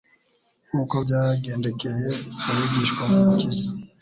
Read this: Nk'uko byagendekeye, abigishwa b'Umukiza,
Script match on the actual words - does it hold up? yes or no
yes